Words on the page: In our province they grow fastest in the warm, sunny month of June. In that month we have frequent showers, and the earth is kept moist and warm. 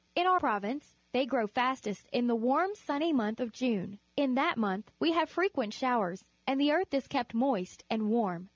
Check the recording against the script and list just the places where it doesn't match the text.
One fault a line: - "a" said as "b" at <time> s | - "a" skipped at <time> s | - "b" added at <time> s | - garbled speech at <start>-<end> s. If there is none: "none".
none